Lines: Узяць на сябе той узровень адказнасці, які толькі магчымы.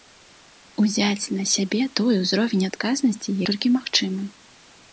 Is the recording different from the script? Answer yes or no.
yes